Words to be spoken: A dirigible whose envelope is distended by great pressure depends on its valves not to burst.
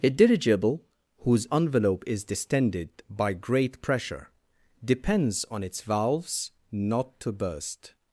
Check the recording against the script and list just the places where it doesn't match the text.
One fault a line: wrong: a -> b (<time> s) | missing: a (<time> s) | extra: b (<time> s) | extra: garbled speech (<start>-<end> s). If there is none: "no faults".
no faults